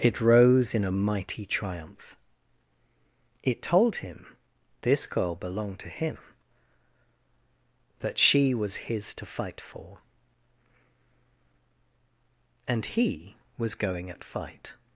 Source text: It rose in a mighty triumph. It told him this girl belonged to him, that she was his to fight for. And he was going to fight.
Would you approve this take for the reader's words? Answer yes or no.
no